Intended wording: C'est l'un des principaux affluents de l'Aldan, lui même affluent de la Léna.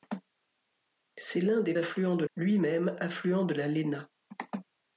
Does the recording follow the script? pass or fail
fail